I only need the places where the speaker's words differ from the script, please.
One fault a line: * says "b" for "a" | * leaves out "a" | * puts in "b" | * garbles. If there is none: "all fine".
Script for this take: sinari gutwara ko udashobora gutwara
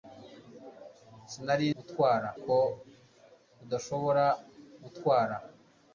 all fine